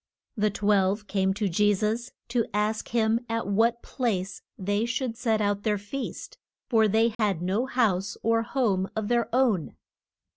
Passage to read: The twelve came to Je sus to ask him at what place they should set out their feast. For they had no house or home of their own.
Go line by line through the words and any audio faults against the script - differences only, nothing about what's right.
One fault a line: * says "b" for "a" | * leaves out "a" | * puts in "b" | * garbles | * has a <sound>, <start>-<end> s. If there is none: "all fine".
* has a dropout, 7.1-7.2 s